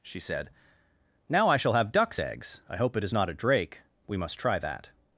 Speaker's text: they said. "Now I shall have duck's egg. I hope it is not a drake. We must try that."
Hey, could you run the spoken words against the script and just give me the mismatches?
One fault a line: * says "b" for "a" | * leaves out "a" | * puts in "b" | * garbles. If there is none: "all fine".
* says "she" for "they"
* says "eggs" for "egg"